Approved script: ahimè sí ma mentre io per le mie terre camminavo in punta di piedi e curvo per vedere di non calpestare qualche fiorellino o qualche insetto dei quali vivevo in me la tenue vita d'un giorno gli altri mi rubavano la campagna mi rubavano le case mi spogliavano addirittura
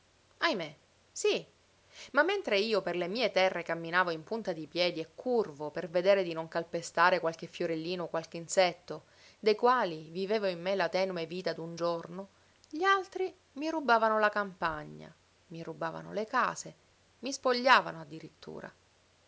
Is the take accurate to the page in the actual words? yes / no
yes